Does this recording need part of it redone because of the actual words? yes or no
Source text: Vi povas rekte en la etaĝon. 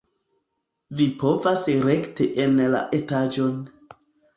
no